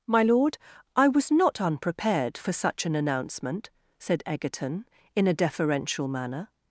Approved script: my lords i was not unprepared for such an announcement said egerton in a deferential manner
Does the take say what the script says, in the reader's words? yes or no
no